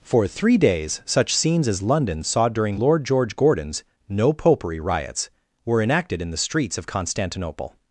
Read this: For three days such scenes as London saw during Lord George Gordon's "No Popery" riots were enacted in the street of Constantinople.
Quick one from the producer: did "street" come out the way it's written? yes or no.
no